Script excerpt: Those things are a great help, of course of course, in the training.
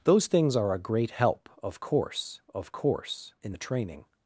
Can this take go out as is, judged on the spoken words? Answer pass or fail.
pass